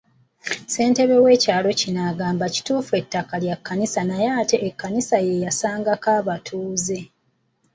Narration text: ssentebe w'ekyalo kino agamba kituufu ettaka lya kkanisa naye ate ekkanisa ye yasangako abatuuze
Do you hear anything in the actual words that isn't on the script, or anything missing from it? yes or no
no